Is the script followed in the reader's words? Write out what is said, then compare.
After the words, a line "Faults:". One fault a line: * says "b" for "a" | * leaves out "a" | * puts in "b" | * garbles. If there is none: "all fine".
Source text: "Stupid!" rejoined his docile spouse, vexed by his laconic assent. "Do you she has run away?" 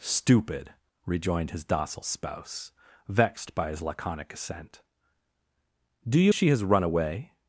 "Stupid!" rejoined his docile spouse, vexed by his laconic assent. "Do you she has run away?"
Faults:
all fine